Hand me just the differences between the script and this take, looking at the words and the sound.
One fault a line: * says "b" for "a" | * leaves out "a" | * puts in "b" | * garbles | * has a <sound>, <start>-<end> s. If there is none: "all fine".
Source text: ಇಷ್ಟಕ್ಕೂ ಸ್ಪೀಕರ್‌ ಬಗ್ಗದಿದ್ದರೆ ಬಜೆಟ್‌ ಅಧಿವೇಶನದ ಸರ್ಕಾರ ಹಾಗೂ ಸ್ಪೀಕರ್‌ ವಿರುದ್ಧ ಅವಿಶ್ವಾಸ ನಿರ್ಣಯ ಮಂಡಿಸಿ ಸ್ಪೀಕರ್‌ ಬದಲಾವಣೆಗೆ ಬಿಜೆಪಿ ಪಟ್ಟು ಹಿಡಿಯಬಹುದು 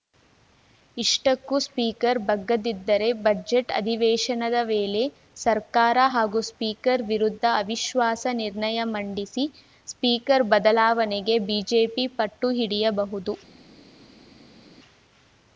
* puts in "ವೇಳೆ"